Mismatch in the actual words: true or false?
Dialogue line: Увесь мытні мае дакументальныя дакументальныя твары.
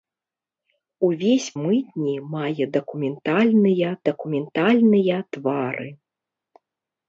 false